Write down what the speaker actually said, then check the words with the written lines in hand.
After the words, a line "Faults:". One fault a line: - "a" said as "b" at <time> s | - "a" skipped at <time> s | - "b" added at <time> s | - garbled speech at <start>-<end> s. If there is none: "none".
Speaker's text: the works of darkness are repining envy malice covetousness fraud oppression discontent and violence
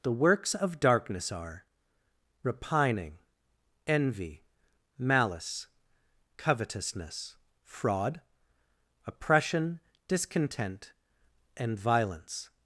the works of darkness are repining envy malice covetousness fraud oppression discontent and violence
Faults:
none